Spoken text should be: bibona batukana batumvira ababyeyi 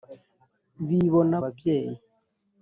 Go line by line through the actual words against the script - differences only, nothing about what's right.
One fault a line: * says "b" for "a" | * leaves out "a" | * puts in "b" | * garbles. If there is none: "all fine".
* leaves out "batukana batumvira"